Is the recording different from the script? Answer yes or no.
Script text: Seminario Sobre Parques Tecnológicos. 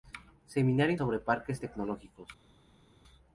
no